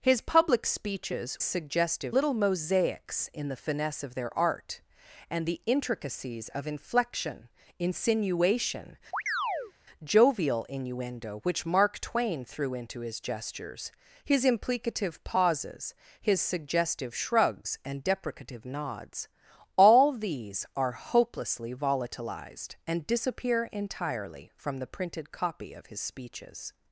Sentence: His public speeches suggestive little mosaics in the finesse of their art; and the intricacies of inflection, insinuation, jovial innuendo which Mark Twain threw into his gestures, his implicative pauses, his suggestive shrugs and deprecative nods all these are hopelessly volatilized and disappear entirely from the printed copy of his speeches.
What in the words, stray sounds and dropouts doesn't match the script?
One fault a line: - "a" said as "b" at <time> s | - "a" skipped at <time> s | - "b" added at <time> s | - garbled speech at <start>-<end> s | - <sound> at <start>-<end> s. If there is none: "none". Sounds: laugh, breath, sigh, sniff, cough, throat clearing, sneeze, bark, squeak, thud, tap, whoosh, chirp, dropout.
- chirp at 9.1-9.7 s